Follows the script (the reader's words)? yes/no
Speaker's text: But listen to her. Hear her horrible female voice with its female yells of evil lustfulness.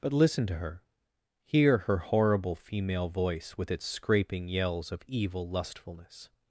no